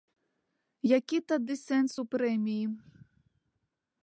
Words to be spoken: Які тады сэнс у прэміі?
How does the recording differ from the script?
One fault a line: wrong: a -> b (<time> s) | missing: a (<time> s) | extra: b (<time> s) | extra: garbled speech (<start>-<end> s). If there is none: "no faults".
no faults